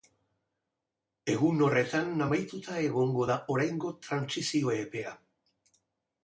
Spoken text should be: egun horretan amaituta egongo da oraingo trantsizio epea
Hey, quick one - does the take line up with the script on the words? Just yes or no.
yes